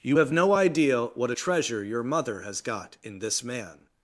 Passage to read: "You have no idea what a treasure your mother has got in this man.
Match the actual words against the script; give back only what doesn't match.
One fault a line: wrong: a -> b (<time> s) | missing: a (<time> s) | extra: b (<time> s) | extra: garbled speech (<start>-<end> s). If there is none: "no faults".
no faults